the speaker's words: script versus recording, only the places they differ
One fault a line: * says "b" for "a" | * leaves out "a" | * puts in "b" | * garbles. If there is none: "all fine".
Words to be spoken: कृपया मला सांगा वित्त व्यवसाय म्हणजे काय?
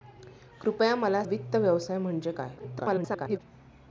* leaves out "सांगा"
* garbles